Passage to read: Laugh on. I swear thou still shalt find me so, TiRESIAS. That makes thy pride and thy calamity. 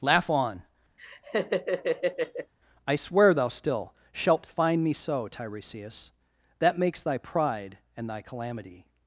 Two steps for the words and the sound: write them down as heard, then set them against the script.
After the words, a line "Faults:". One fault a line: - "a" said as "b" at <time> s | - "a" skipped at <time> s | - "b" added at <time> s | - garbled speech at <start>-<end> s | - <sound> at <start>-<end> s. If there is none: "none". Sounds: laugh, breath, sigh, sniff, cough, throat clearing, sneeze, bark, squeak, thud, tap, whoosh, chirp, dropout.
Laugh on. I swear thou still shalt find me so, TiRESIAS. That makes thy pride and thy calamity.
Faults:
- laugh at 1.0-2.5 s